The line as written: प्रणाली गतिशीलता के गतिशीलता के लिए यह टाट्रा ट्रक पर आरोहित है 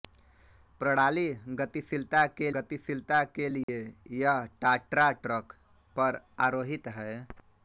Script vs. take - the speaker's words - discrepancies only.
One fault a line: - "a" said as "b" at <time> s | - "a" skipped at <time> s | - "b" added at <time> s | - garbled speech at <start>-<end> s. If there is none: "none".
none